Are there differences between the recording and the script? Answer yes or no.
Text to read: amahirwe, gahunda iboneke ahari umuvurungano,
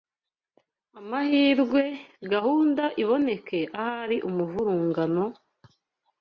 no